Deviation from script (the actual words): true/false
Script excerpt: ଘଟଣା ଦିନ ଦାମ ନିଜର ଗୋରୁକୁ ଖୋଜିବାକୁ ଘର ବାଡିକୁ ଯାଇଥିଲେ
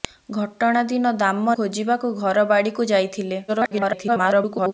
true